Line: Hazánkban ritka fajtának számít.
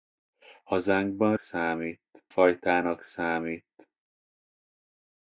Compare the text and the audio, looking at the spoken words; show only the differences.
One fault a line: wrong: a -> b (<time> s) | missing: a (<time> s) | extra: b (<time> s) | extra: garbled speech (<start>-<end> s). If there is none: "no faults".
wrong: ritka -> számít (1.4 s)